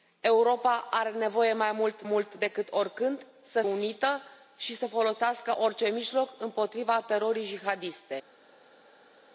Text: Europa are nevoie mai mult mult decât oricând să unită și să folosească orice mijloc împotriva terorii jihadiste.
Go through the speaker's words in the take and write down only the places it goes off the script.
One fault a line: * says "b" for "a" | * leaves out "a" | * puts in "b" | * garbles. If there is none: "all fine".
all fine